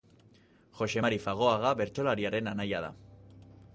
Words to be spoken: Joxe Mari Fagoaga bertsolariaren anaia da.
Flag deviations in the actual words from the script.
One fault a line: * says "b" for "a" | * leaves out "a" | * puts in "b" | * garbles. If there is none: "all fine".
all fine